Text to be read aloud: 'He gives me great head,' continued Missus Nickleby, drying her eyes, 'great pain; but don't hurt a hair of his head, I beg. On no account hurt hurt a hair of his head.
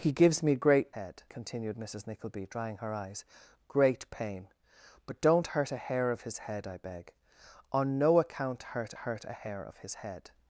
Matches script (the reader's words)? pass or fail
pass